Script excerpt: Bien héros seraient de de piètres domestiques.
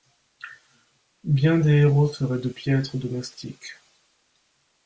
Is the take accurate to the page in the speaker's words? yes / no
no